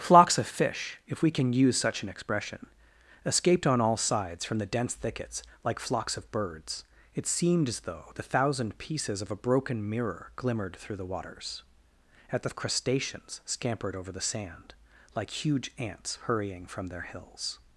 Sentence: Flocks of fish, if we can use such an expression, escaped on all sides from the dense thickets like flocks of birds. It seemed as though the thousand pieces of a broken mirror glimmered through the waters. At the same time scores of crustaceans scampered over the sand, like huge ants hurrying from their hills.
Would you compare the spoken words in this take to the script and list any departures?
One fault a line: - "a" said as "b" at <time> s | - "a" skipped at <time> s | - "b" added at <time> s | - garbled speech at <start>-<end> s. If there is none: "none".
- "same time scores" skipped at 12.5 s